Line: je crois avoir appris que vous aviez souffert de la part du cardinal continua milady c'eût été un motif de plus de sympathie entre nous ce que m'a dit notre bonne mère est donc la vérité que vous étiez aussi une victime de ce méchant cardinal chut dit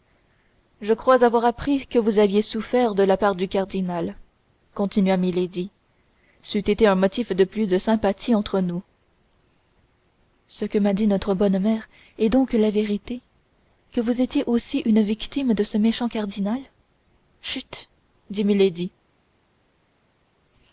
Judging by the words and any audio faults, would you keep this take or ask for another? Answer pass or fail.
pass